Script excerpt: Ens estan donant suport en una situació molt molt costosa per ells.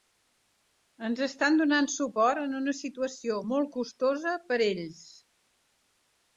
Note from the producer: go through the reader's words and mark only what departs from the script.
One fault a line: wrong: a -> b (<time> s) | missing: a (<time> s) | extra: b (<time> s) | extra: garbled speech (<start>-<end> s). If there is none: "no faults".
missing: molt (3.7 s)